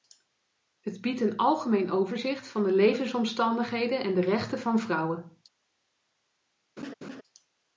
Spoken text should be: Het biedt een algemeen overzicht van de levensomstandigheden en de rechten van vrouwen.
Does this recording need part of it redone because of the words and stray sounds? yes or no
yes